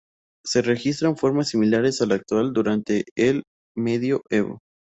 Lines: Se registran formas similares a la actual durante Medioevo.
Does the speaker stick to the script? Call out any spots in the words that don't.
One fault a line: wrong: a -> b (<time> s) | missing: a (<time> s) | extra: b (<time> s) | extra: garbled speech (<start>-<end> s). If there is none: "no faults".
extra: el (3.1 s)